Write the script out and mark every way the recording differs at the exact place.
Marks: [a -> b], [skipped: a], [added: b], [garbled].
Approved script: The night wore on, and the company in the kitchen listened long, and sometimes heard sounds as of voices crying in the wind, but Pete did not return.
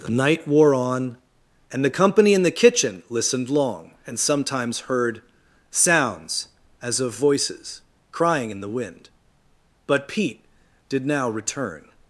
The night wore on, and the company in the kitchen listened long, and sometimes heard sounds as of voices crying in the wind, but Pete did [not -> now] return.